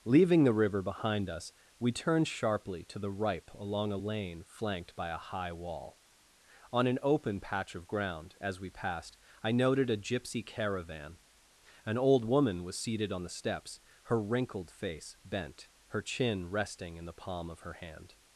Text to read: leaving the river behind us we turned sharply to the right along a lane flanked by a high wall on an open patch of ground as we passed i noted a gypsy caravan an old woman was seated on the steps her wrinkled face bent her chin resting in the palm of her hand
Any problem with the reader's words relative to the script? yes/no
yes